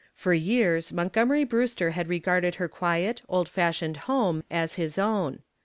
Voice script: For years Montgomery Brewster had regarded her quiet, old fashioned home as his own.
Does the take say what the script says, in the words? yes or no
yes